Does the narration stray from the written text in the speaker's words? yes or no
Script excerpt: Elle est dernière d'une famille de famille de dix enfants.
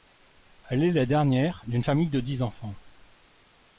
yes